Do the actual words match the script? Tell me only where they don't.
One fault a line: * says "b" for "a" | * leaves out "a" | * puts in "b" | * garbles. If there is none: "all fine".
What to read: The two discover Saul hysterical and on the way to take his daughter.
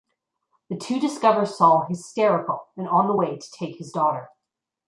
all fine